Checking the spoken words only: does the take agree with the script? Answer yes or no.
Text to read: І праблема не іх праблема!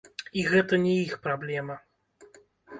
no